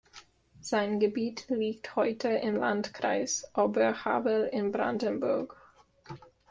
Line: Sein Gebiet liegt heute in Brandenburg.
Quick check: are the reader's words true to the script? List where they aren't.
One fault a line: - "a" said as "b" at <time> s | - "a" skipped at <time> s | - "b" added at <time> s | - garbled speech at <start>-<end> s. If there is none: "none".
- "im Landkreis Oberhavel" added at 2.3 s